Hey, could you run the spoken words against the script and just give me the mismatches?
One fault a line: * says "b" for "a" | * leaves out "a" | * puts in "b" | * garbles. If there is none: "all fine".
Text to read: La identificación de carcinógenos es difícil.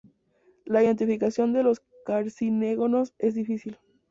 * puts in "los"